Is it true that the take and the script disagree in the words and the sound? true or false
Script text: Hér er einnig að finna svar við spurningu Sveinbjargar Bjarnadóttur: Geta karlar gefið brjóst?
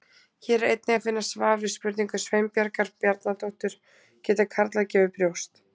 false